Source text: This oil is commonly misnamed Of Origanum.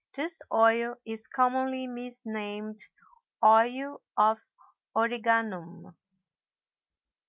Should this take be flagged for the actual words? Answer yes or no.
yes